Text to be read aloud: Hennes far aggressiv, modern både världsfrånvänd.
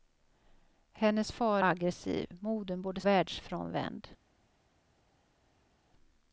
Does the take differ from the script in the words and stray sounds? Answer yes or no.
no